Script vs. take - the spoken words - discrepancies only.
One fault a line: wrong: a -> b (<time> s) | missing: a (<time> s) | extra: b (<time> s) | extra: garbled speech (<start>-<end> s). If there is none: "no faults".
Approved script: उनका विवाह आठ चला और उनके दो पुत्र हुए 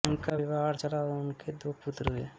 no faults